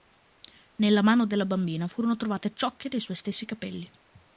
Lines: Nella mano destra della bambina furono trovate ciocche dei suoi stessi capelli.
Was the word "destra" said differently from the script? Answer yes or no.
yes